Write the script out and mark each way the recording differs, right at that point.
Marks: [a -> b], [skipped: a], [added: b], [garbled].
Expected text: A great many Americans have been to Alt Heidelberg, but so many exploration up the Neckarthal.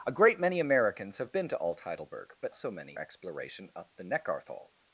A great many Americans have been to Alt Heidelberg, but so many exploration up the Neckarthal.